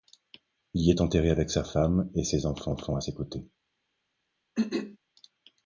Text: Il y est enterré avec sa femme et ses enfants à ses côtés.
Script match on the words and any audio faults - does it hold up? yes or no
no